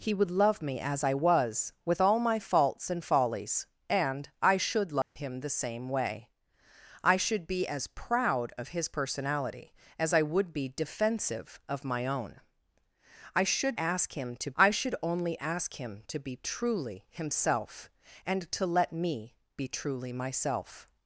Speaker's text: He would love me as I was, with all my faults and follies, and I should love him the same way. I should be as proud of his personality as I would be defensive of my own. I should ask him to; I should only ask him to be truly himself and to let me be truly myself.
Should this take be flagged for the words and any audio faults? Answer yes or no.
yes